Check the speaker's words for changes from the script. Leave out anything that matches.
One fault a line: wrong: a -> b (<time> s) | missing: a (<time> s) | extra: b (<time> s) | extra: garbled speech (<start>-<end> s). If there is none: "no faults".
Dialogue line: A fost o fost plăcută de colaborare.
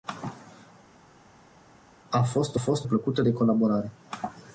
no faults